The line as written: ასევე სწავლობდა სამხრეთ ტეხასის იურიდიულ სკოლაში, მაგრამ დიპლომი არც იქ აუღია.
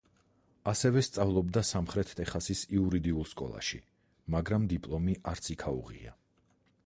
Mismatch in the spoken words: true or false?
false